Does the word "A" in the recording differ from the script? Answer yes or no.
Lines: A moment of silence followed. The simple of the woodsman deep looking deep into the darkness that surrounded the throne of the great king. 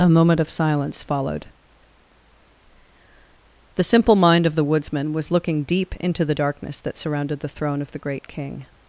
no